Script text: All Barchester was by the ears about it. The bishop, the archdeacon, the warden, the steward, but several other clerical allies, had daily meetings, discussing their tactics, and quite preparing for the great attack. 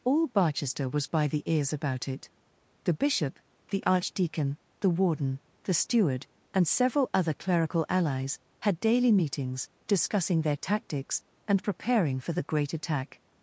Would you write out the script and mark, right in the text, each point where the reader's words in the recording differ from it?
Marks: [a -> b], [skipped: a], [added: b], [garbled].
All Barchester was by the ears about it. The bishop, the archdeacon, the warden, the steward, [but -> and] several other clerical allies, had daily meetings, discussing their tactics, and [skipped: quite] preparing for the great attack.